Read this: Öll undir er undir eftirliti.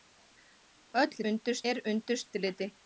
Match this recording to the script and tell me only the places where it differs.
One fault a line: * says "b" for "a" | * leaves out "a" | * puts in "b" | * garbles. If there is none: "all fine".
all fine